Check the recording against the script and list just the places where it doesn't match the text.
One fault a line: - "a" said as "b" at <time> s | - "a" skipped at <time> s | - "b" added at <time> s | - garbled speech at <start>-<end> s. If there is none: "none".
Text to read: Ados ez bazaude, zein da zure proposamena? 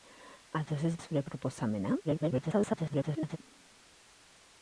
- "bazaude zein" skipped at 0.9 s
- garbled speech at 2.0-3.4 s